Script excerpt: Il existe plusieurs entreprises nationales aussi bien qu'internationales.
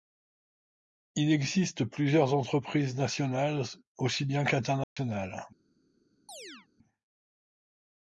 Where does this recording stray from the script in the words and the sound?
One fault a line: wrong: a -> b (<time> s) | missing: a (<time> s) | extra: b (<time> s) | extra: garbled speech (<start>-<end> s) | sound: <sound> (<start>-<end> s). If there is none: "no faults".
sound: dropout (4.8-5.0 s)
sound: chirp (6.3-6.7 s)